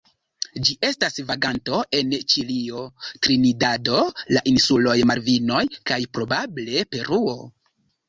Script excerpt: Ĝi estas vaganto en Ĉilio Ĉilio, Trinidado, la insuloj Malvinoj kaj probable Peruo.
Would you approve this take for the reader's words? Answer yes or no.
no